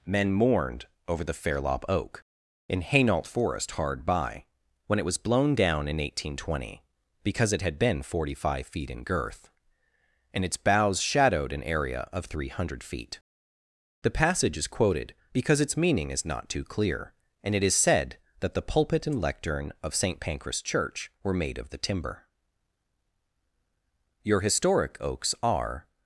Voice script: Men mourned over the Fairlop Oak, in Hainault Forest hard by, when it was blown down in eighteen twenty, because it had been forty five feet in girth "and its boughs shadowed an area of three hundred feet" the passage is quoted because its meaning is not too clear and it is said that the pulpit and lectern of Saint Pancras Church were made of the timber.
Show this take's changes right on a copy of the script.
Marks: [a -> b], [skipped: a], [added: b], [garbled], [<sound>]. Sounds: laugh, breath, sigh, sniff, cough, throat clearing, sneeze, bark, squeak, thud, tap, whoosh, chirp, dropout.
Men mourned over the Fairlop Oak, in Hainault Forest hard by, when it was blown down in eighteen twenty, because it had been forty five feet in girth "and its boughs shadowed an area of three hundred feet" the passage is quoted because its meaning is not too clear and it is said that the pulpit and lectern of Saint Pancras Church were made of the timber. [added: Your historic oaks are]